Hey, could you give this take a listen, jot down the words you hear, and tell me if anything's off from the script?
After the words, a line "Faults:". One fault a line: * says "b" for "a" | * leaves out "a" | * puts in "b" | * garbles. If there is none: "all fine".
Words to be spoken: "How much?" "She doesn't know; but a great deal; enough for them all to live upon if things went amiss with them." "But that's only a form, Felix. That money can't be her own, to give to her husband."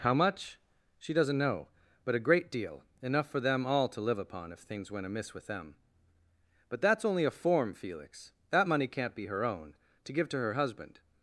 "How much?" "She doesn't know; but a great deal; enough for them all to live upon if things went amiss with them." "But that's only a form, Felix. That money can't be her own, to give to her husband."
Faults:
all fine